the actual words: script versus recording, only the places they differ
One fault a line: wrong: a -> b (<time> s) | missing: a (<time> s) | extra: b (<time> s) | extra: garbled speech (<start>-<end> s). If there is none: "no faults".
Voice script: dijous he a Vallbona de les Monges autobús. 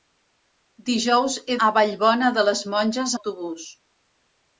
no faults